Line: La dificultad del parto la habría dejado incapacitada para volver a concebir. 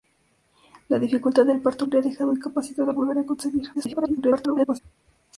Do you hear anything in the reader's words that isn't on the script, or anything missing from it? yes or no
yes